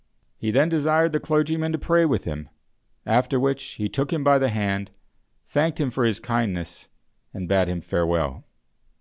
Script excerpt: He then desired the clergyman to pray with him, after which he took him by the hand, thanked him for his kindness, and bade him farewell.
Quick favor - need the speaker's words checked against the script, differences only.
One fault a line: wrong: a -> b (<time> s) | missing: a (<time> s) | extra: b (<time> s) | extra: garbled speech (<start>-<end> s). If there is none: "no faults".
no faults